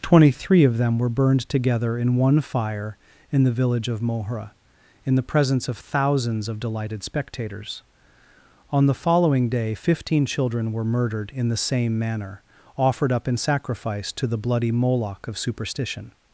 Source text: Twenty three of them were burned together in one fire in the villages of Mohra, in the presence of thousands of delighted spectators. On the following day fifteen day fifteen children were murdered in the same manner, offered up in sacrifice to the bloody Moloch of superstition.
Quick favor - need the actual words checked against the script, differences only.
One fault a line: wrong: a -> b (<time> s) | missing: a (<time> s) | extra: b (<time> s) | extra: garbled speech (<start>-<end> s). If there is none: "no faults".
wrong: villages -> village (3.5 s)
missing: day fifteen (10.2 s)